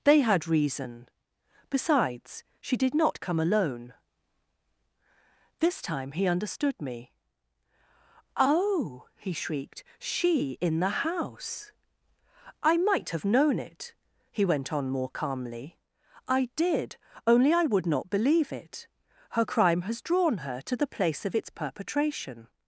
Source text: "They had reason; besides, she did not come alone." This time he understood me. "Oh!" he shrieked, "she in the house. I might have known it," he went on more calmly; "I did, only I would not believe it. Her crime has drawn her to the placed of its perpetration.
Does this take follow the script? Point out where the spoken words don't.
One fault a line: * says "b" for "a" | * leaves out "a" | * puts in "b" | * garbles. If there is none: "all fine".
* says "place" for "placed"